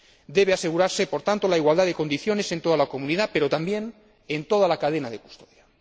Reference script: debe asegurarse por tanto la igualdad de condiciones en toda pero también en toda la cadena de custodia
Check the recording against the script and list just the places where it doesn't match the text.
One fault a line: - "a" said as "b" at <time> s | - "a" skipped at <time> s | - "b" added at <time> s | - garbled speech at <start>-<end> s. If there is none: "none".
- "la comunidad" added at 2.8 s